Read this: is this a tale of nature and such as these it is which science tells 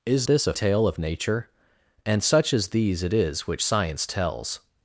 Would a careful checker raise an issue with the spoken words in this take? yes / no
no